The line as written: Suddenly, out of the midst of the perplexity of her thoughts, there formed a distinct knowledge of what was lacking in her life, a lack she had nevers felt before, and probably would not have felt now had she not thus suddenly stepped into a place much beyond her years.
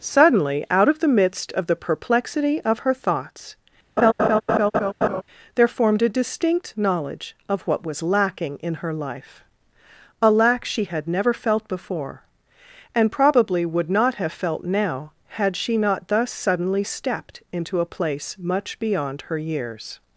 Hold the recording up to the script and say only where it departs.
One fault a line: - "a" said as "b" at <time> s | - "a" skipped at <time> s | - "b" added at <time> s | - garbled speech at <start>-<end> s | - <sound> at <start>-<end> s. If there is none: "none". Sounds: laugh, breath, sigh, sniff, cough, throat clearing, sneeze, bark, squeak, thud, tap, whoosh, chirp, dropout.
- laugh at 4.0-5.2 s
- "nevers" said as "never" at 11.1 s